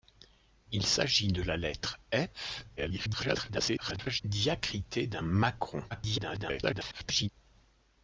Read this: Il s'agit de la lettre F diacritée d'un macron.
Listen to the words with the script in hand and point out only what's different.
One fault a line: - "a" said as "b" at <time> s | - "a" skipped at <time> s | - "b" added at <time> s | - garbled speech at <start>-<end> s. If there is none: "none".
- garbled speech at 2.8-4.2 s
- garbled speech at 5.9-7.3 s